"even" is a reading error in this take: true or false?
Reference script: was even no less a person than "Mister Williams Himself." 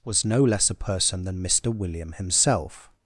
true